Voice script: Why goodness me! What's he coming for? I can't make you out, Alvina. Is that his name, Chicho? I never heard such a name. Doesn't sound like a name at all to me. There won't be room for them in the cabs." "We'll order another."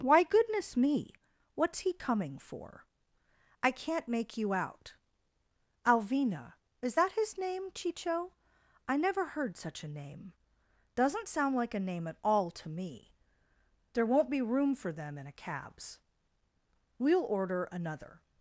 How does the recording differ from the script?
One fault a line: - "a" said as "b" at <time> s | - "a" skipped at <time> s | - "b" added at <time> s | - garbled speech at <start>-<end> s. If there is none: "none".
- "the" said as "a" at 15.3 s